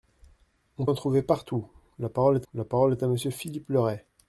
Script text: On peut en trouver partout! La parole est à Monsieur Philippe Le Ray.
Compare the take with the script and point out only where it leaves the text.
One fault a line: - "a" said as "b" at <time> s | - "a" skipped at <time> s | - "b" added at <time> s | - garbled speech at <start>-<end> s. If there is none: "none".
- "peut" skipped at 0.9 s
- "la parole est" added at 2.5 s